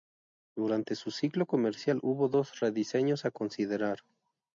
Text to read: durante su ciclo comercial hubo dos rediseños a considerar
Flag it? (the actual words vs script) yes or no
no